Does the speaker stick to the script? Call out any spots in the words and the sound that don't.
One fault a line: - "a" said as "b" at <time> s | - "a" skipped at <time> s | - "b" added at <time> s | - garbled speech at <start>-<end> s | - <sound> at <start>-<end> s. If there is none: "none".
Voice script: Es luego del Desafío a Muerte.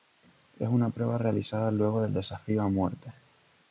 - "una prueba realizada" added at 0.7 s